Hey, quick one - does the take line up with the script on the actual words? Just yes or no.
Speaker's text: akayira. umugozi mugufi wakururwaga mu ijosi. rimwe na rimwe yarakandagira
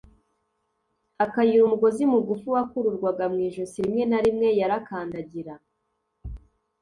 yes